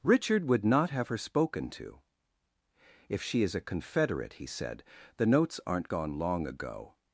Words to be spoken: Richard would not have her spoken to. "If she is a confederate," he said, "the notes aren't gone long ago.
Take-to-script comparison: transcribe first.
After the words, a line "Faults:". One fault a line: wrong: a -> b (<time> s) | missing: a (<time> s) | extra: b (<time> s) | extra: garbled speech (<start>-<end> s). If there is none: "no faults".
Richard would not have her spoken to. "If she is a confederate," he said, "the notes aren't gone long ago.
Faults:
no faults